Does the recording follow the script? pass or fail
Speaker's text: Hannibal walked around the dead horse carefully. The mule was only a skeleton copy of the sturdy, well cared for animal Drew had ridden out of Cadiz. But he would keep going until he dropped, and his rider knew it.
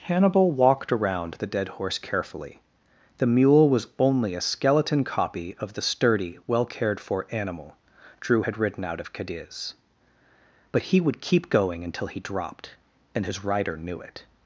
pass